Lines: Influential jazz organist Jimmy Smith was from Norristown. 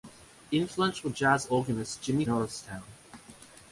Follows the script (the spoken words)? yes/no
no